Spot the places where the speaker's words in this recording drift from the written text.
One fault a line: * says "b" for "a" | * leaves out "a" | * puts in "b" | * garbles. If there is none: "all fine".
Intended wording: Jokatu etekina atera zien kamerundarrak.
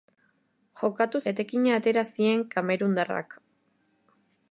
all fine